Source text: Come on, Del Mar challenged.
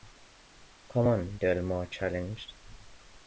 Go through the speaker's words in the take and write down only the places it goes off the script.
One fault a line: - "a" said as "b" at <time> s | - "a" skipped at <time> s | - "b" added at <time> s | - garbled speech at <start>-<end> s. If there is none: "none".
none